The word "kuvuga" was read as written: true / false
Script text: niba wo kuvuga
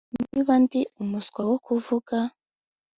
true